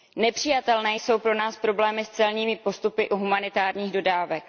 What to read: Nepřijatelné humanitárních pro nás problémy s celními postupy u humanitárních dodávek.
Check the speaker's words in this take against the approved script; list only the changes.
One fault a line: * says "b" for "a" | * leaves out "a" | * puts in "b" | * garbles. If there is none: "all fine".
* says "jsou" for "humanitárních"